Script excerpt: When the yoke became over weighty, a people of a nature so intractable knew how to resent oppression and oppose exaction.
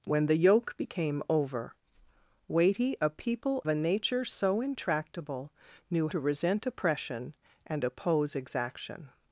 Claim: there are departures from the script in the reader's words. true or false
true